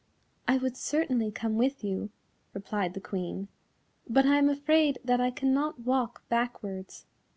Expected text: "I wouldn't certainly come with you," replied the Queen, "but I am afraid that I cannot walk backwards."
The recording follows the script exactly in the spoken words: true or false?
false